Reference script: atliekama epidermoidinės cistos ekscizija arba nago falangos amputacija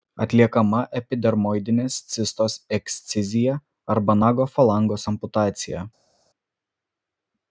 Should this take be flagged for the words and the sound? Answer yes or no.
no